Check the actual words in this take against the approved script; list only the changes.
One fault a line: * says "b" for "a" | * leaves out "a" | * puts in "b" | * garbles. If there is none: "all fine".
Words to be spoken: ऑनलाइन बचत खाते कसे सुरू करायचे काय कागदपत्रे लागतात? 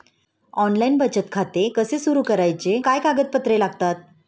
all fine